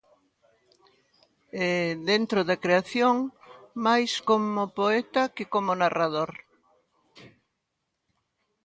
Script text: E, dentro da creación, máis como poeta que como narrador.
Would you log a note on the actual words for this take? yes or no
no